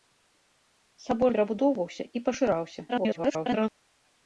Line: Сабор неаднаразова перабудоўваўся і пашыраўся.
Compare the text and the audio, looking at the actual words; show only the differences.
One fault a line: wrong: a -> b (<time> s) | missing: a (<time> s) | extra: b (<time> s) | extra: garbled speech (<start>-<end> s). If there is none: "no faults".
missing: неаднаразова (1.3 s)
extra: garbled speech (2.9-3.7 s)